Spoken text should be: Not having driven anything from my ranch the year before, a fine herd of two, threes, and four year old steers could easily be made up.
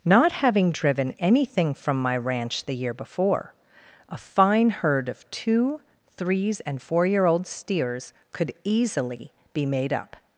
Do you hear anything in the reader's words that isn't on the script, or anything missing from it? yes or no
no